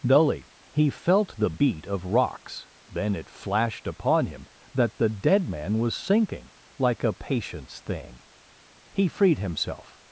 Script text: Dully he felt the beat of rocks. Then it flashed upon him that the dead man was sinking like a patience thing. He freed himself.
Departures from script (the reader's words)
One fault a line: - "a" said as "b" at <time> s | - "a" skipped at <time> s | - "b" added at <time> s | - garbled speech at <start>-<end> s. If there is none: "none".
none